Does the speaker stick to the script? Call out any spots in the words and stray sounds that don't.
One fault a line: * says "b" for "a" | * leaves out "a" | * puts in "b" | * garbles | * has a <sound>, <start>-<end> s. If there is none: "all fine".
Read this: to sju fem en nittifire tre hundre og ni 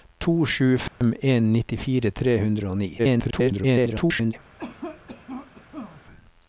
* has a dropout, 0.9-1.0 s
* garbles
* has a cough, 4.6-6.0 s